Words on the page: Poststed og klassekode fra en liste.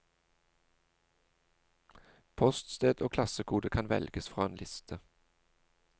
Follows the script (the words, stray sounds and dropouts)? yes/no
no